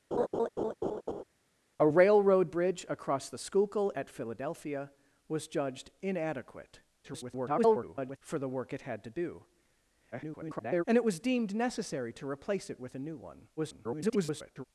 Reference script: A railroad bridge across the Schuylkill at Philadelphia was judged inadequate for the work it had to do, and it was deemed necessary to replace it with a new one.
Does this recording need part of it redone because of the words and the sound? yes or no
yes